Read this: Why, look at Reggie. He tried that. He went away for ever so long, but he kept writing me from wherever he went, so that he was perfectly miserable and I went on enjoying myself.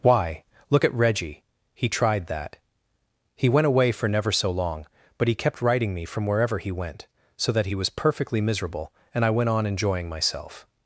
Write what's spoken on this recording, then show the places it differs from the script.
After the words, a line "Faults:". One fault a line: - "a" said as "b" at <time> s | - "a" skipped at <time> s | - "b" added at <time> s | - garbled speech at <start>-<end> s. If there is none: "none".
Why, look at Reggie. He tried that. He went away for never so long, but he kept writing me from wherever he went, so that he was perfectly miserable and I went on enjoying myself.
Faults:
- "ever" said as "never" at 4.1 s